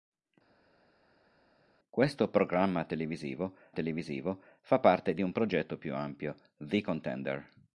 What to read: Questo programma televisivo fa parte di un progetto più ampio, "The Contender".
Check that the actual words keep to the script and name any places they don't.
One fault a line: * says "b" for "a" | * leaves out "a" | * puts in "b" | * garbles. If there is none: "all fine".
* puts in "televisivo"